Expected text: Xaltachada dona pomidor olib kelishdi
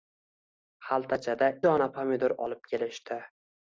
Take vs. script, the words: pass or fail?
pass